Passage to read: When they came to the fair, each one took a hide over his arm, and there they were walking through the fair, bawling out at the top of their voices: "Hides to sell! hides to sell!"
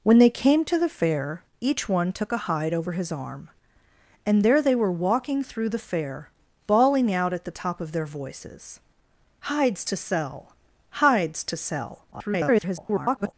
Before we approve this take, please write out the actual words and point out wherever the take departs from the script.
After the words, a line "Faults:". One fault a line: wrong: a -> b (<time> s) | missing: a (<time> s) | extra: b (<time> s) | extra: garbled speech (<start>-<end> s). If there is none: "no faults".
When they came to the fair, each one took a hide over his arm, and there they were walking through the fair, bawling out at the top of their voices: "Hides to sell! hides to sell!" [garbled]
Faults:
extra: garbled speech (12.1-13.3 s)